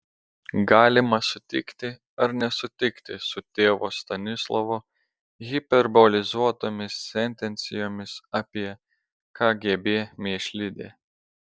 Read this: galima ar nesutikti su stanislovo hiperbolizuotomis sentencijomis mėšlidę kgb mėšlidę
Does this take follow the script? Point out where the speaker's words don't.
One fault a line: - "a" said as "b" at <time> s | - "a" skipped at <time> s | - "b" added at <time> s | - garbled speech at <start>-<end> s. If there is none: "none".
- "sutikti" added at 1.3 s
- "tėvo" added at 3.6 s
- "mėšlidę" said as "apie" at 8.4 s